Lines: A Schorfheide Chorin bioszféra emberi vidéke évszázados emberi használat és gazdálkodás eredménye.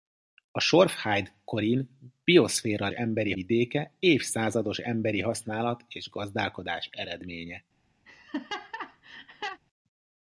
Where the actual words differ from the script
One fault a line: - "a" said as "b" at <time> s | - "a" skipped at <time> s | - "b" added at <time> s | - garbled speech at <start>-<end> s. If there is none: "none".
none